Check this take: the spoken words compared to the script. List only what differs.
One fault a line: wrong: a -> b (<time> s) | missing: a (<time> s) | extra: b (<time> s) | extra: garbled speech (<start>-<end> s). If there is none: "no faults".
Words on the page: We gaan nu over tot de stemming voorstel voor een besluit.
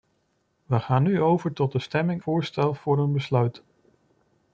no faults